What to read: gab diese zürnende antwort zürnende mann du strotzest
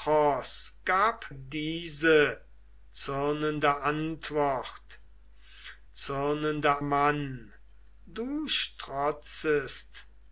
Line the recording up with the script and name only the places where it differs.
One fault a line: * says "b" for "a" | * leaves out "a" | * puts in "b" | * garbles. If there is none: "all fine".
all fine